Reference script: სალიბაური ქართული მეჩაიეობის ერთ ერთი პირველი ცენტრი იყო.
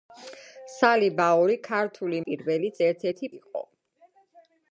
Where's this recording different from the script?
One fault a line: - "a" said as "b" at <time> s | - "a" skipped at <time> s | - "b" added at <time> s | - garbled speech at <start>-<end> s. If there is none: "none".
- "მეჩაიეობის" said as "პირველი" at 2.3 s
- "პირველი ცენტრი" skipped at 3.3 s